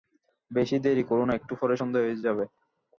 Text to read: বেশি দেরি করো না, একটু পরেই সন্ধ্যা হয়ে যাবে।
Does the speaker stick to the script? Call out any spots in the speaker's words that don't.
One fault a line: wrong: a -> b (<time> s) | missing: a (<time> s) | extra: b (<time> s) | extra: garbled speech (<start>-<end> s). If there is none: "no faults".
no faults